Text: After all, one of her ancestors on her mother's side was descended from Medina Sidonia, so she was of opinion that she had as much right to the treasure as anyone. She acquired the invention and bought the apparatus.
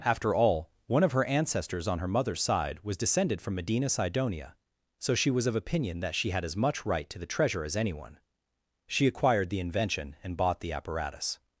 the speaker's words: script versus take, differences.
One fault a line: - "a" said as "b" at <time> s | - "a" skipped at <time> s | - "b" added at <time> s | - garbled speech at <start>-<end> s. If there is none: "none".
none